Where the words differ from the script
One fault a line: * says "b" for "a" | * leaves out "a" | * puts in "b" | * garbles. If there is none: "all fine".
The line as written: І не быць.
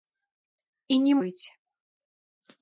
all fine